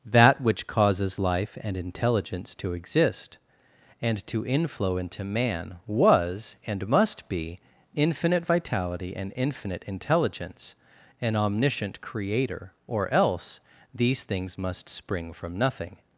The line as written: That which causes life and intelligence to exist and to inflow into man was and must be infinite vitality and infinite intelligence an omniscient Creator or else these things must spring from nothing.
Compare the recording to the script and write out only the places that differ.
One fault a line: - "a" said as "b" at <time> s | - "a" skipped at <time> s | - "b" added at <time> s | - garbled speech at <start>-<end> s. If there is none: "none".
none